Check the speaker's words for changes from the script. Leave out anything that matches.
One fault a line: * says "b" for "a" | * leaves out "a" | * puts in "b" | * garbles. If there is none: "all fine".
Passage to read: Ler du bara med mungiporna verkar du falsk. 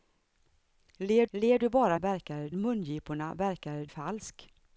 * puts in "ler"
* says "verkar" for "med"
* leaves out "du"